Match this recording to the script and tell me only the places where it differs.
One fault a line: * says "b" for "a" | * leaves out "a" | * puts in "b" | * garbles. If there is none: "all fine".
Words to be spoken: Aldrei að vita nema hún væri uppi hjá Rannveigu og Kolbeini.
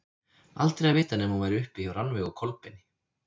all fine